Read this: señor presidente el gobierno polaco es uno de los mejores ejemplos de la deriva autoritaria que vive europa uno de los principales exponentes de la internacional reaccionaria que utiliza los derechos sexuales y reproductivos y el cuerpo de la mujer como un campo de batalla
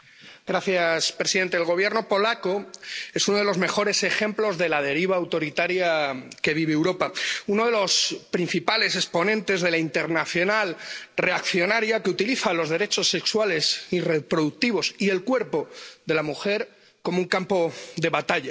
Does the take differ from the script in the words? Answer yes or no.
no